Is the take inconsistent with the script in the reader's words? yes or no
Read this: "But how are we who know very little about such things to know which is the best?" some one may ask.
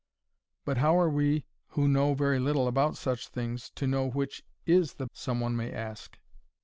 yes